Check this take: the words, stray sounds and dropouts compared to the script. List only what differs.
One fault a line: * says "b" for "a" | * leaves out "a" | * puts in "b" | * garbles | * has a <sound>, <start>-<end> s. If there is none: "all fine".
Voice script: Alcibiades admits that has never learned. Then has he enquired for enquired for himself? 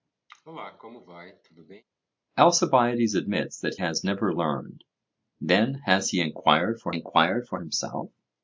* has a cough, 0.3-1.8 s